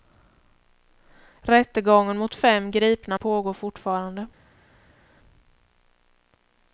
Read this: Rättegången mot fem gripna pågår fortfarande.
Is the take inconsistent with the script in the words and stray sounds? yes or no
no